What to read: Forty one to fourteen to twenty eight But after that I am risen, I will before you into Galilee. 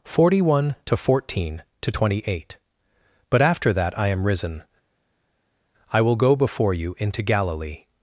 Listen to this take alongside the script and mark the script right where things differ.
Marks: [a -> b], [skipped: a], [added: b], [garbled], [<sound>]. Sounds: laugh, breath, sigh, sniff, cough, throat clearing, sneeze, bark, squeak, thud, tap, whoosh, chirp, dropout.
Forty one to fourteen to twenty eight But after that I am risen, I will [added: go] before you into Galilee.